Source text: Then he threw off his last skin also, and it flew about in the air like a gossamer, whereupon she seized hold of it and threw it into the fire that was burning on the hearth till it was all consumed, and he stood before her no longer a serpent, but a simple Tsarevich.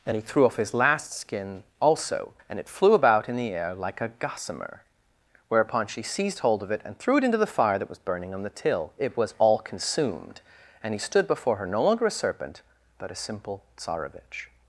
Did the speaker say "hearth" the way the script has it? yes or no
no